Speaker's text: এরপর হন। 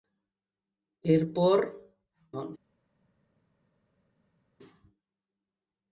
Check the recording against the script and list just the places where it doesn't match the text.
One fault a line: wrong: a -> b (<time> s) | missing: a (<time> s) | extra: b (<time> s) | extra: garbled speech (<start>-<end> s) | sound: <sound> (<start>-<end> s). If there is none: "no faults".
no faults